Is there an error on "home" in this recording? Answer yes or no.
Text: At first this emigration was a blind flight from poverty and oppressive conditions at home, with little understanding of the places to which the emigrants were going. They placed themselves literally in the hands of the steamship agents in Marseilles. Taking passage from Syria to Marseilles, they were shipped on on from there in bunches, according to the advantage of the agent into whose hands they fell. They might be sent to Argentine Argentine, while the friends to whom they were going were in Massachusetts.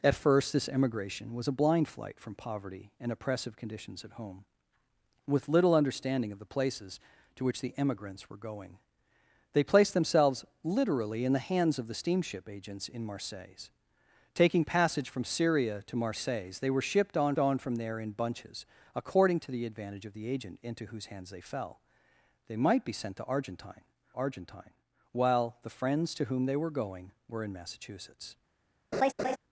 no